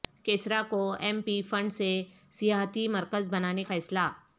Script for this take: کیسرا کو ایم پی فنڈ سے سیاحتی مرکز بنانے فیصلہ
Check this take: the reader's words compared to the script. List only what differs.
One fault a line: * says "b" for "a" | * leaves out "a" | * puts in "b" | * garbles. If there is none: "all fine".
all fine